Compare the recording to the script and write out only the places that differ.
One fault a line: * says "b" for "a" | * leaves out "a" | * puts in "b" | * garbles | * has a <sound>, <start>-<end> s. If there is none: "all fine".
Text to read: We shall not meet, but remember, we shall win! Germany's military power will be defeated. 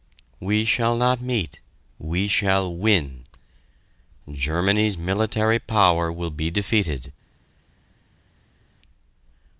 * leaves out "but remember"